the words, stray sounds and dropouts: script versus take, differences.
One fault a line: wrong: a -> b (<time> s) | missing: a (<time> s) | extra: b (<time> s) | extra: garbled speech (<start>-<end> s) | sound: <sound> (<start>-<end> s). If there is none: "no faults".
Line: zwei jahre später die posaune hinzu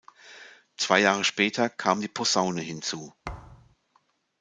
extra: kam (1.7 s)
sound: thud (3.2-3.8 s)